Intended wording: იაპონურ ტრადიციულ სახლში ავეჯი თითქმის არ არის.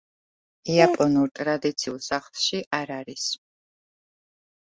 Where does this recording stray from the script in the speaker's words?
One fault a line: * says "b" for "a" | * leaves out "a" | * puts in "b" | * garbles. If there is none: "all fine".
* leaves out "ავეჯი თითქმის"